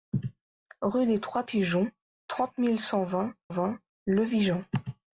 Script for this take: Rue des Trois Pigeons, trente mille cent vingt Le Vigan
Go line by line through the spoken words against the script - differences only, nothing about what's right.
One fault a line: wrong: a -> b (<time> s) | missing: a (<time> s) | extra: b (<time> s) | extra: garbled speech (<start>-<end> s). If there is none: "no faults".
extra: vingt (3.5 s)